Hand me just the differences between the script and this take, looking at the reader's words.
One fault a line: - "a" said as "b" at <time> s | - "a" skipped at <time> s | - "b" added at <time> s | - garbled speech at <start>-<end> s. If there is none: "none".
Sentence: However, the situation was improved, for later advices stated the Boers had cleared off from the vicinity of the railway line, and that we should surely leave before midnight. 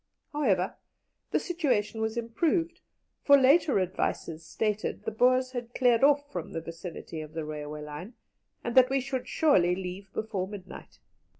none